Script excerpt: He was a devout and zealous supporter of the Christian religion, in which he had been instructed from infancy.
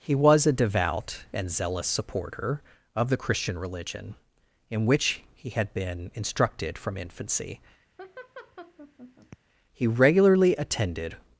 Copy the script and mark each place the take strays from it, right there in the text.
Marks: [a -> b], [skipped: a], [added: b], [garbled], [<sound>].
He was a devout and zealous supporter of the Christian religion, in which he had been instructed from infancy. [laugh] [added: He regularly attended]